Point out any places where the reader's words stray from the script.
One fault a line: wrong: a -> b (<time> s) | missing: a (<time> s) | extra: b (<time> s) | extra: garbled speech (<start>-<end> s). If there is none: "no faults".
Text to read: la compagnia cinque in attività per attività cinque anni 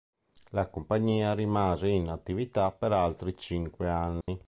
wrong: cinque -> rimase (1.4 s)
wrong: attività -> altri (2.9 s)